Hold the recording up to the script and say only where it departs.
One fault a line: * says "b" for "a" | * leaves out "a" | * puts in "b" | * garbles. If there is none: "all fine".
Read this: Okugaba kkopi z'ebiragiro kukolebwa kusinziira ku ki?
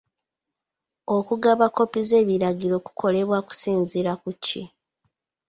all fine